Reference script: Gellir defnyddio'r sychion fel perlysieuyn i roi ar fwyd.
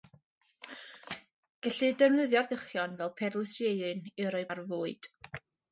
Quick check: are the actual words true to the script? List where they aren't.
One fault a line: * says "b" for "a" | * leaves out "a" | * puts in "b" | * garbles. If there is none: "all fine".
all fine